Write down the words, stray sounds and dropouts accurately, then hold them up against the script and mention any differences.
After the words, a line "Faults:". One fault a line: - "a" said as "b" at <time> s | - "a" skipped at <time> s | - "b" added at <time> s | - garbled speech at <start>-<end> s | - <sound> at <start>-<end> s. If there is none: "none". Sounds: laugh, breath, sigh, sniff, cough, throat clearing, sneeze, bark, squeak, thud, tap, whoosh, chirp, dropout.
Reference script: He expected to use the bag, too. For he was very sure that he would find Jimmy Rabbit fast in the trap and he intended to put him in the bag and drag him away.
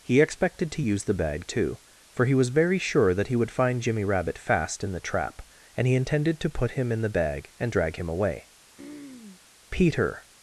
He expected to use the bag, too. For he was very sure that he would find Jimmy Rabbit fast in the trap and he intended to put him in the bag and drag him away. Peter
Faults:
- throat clearing at 8.8-9.4 s
- "Peter" added at 9.7 s